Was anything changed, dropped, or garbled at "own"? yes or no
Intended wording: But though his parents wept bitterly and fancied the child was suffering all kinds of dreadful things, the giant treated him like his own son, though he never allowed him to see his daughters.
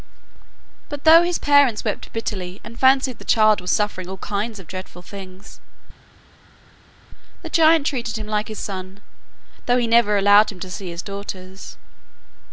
yes